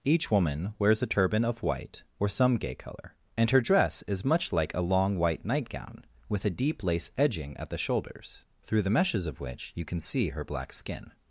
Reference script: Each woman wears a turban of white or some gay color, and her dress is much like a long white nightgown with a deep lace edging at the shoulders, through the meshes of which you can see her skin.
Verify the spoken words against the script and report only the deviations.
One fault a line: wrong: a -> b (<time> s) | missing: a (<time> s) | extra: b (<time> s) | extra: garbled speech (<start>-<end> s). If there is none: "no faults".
extra: black (10.4 s)